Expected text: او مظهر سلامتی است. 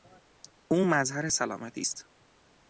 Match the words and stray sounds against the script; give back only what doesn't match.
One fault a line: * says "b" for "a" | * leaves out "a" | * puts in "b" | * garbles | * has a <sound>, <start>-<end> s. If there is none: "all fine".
all fine